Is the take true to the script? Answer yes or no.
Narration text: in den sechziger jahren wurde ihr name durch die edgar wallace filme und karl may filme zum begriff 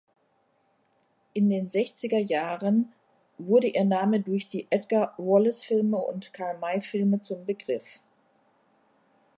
yes